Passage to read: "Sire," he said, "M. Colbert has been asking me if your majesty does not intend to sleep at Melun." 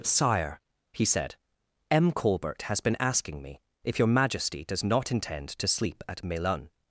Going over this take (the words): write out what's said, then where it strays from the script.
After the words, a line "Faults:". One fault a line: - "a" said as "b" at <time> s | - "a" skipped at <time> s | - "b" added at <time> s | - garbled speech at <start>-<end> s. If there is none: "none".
"Sire," he said, "M. Colbert has been asking me if your majesty does not intend to sleep at Melun."
Faults:
none